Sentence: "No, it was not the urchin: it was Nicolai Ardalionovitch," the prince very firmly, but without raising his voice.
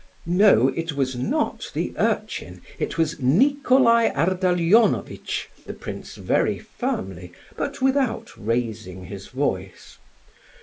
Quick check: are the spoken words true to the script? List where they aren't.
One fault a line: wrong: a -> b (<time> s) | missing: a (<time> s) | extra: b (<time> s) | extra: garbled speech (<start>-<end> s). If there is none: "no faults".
no faults